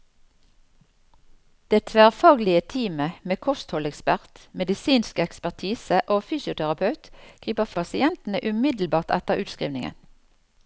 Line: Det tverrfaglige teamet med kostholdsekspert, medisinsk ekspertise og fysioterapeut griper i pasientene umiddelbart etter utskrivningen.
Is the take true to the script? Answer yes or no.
yes